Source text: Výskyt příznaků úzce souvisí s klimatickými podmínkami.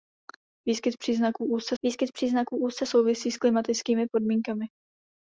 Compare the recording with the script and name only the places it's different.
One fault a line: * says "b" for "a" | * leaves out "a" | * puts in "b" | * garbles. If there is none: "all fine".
* puts in "výskyt příznaků úzce"